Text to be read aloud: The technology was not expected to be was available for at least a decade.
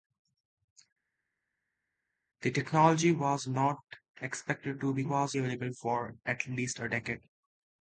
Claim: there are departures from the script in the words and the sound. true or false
false